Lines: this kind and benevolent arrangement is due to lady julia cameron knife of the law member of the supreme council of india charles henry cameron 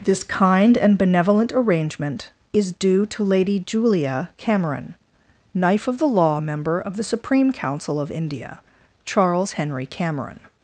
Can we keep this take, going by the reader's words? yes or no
yes